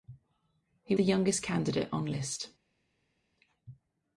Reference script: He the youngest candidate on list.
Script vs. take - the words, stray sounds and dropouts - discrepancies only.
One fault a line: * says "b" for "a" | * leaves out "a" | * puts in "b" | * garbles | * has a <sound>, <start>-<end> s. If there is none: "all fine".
all fine